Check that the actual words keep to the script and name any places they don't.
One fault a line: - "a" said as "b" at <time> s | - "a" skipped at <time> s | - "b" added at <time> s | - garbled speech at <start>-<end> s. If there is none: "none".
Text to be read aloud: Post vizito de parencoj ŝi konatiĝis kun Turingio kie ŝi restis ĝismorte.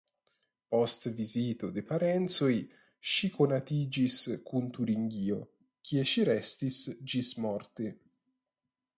none